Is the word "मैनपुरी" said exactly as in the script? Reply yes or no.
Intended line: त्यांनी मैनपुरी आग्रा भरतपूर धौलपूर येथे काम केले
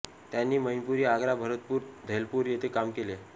yes